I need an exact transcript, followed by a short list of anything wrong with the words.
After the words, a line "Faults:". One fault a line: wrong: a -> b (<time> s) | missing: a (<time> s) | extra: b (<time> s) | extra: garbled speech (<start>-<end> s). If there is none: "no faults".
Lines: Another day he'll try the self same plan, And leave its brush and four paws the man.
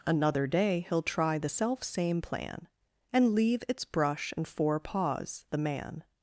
Another day he'll try the self same plan, And leave its brush and four paws the man.
Faults:
no faults